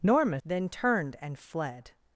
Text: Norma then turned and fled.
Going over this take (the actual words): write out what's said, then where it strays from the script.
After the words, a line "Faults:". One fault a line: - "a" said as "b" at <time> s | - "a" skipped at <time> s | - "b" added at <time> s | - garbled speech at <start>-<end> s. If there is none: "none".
Norma then turned and fled.
Faults:
none